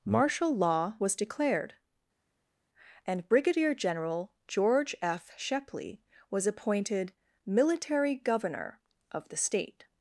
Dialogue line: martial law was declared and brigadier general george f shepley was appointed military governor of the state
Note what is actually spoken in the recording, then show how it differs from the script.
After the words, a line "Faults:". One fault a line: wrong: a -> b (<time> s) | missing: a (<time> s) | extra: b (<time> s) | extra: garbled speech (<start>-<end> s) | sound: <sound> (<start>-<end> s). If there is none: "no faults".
martial law was declared and brigadier general george f shepley was appointed military governor of the state
Faults:
no faults